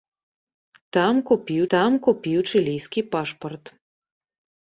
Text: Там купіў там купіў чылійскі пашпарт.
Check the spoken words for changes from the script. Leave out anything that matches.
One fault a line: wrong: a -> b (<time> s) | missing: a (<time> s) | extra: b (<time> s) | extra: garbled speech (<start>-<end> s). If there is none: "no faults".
no faults